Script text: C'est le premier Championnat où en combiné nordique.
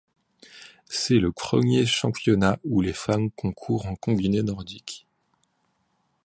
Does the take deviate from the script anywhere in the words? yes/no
yes